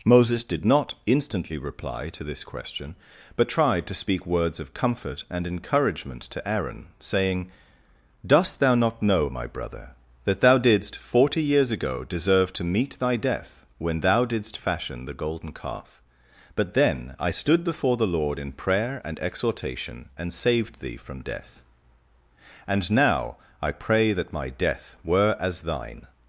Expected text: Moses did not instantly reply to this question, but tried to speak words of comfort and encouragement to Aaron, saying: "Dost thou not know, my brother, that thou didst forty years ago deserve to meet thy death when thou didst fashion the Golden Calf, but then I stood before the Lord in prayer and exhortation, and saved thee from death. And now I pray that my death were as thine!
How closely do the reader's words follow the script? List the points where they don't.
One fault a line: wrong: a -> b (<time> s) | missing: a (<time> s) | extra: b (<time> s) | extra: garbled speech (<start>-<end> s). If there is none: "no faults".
no faults